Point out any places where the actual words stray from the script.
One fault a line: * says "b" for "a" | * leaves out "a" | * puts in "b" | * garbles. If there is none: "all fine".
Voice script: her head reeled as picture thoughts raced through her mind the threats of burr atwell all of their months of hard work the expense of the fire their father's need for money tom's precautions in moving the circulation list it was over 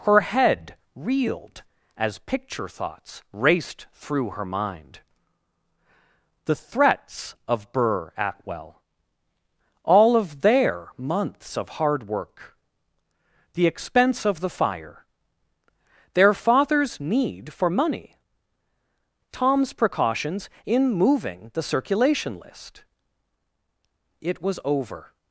all fine